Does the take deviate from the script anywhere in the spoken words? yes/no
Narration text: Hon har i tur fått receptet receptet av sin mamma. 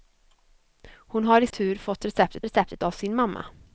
no